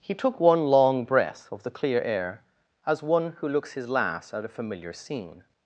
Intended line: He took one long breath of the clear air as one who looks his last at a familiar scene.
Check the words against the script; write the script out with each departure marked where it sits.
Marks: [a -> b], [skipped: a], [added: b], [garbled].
He took one long breath of the clear air as one who looks his last at a familiar scene.